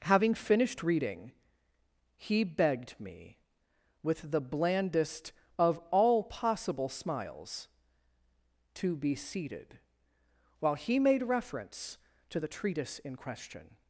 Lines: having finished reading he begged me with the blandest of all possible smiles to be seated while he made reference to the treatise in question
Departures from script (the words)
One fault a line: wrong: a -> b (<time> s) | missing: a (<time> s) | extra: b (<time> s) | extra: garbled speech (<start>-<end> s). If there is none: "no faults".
no faults